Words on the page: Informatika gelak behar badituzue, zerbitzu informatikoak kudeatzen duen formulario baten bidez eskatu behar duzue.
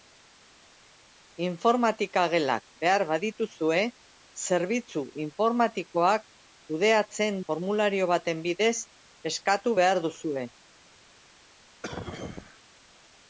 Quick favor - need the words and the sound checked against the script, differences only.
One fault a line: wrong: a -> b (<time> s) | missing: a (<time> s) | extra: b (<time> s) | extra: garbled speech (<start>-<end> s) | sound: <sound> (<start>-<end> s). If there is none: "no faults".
missing: duen (7.4 s)
sound: cough (11.8-12.6 s)